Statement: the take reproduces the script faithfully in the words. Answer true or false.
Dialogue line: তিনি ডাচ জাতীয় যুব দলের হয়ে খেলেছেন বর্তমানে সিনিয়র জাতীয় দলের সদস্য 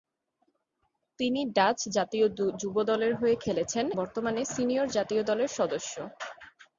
true